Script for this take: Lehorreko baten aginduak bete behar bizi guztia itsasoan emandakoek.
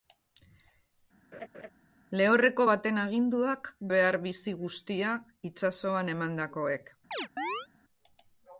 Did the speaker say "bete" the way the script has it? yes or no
no